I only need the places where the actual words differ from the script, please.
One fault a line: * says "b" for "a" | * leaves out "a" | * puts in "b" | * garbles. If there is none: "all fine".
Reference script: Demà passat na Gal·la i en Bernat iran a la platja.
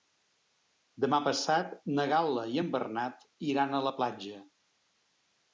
all fine